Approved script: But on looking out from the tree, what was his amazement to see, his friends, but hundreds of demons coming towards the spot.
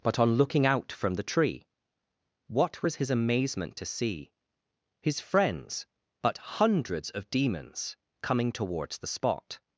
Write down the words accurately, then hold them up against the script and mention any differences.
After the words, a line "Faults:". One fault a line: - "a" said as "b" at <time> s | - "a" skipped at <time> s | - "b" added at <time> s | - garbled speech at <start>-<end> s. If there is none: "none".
But on looking out from the tree, what was his amazement to see, his friends, but hundreds of demons coming towards the spot.
Faults:
none